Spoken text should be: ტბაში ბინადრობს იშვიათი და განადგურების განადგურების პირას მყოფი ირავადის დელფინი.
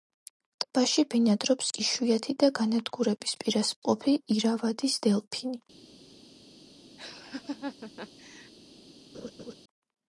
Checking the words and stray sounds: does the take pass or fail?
fail